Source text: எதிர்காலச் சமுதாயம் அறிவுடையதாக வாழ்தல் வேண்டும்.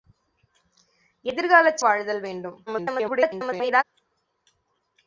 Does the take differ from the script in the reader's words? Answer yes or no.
yes